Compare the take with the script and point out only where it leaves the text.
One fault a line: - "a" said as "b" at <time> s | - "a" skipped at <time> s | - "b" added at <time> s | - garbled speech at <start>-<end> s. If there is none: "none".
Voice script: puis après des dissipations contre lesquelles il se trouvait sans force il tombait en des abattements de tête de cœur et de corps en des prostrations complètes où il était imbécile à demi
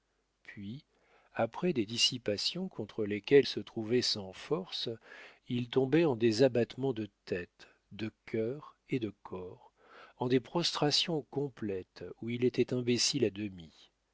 - "il" skipped at 3.5 s